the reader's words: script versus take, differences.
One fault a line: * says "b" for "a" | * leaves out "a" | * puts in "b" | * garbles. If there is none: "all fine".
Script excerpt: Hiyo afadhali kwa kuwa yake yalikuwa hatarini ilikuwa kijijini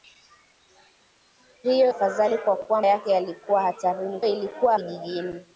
all fine